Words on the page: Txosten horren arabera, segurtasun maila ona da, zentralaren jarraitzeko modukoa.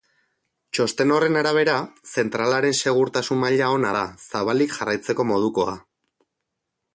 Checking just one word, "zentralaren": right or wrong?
wrong